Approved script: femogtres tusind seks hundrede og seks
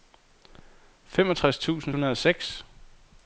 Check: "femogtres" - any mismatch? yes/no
no